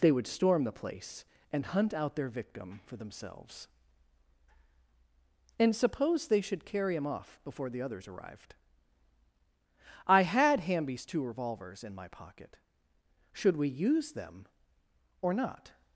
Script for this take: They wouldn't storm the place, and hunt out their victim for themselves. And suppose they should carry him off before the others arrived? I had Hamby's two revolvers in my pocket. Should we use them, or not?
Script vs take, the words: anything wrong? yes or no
yes